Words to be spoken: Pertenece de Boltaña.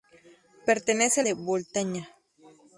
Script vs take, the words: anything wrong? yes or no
no